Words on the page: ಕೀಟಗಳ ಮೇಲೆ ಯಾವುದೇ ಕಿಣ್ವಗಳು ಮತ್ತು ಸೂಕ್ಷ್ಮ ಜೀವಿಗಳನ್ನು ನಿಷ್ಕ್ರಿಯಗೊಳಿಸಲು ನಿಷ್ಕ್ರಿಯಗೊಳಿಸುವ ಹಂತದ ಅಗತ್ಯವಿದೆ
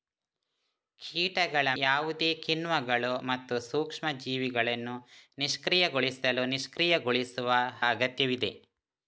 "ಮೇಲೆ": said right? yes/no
no